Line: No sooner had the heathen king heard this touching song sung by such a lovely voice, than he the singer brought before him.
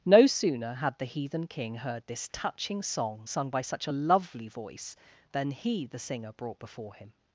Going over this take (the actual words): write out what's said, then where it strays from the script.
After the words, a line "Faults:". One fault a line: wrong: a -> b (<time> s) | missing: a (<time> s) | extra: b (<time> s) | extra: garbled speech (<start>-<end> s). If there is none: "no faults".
No sooner had the heathen king heard this touching song sung by such a lovely voice, than he the singer brought before him.
Faults:
no faults